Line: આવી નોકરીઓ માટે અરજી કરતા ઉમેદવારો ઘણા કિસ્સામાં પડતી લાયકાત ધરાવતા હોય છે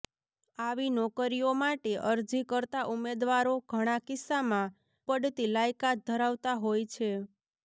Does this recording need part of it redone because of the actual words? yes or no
no